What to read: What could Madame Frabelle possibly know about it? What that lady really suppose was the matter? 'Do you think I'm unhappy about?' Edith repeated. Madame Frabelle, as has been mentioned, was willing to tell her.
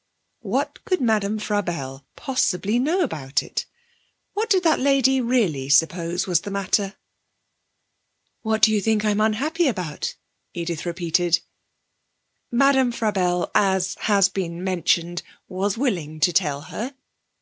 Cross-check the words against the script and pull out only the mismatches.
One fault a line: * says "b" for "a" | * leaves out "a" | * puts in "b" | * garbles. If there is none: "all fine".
* puts in "did"
* puts in "What"